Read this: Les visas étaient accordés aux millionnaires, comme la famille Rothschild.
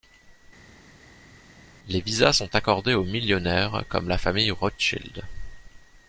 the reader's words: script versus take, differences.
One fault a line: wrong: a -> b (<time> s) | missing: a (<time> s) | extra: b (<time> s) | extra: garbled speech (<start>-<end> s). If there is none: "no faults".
wrong: étaient -> sont (2.3 s)